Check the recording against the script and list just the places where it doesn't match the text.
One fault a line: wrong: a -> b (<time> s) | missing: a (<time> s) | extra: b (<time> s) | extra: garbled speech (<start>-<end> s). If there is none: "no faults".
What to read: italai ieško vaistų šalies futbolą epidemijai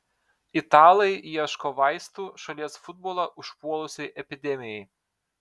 extra: užpuolusiai (3.4 s)